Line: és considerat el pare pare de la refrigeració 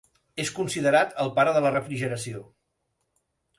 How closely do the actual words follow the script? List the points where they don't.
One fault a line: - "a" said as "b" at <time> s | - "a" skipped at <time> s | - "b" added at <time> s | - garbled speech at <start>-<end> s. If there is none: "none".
- "pare" skipped at 1.5 s